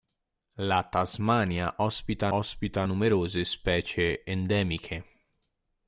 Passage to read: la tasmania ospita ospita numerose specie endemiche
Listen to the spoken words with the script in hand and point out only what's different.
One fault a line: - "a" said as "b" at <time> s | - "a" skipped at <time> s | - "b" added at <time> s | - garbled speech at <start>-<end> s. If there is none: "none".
none